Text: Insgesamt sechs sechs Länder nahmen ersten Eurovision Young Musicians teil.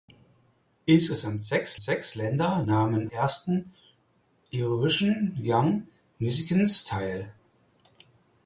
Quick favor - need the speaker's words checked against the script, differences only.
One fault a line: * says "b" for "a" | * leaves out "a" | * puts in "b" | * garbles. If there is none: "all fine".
all fine